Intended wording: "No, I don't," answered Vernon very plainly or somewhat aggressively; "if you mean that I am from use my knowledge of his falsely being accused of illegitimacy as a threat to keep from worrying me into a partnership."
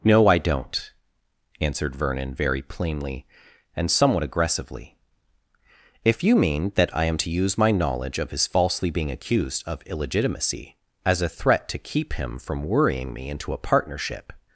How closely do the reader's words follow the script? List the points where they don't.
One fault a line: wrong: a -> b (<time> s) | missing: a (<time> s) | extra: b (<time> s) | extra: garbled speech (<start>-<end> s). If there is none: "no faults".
wrong: or -> and (3.8 s)
wrong: from -> to (7.2 s)
extra: him (12.1 s)